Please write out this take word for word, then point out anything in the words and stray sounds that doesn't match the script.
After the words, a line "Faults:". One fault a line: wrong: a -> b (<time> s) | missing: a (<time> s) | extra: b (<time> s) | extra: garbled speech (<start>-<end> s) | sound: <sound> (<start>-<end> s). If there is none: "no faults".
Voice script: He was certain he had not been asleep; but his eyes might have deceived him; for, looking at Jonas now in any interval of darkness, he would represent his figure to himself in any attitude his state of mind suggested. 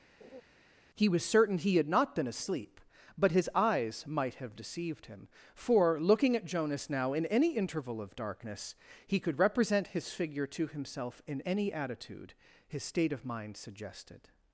He was certain he had not been asleep; but his eyes might have deceived him; for, looking at Jonas now in any interval of darkness, he could represent his figure to himself in any attitude his state of mind suggested.
Faults:
sound: laugh (0.2-0.4 s)
wrong: would -> could (9.2 s)